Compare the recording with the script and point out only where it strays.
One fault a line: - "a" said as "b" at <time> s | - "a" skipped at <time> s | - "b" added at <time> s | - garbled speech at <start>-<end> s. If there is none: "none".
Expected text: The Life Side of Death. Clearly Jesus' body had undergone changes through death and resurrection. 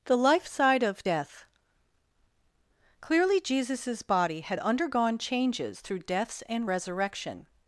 - "death" said as "deaths" at 6.0 s